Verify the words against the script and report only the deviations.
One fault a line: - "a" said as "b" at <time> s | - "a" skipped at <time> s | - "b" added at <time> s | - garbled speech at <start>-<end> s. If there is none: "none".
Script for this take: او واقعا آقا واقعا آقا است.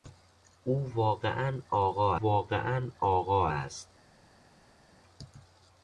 none